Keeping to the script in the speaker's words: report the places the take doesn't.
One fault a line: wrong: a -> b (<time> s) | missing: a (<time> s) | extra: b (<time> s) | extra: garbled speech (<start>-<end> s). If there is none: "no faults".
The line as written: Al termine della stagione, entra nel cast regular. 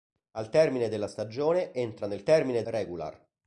wrong: cast -> termine (2.2 s)